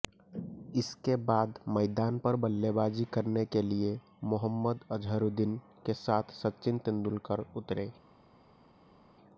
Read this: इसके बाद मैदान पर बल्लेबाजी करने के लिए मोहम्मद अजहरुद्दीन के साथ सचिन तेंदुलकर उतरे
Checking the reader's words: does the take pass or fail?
pass